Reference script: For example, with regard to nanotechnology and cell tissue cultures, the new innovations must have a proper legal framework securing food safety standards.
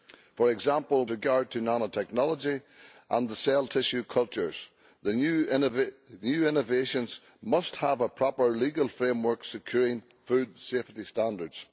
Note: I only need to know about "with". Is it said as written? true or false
false